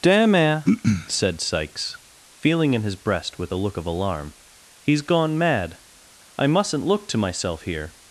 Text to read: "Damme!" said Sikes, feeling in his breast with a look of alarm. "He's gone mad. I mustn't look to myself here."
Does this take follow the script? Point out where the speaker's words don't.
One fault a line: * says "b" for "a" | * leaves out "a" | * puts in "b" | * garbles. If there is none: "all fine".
all fine